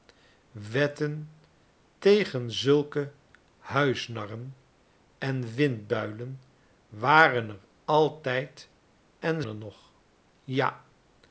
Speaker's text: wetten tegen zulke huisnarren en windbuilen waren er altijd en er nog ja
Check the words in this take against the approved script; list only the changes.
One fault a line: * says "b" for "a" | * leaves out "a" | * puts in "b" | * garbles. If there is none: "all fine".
all fine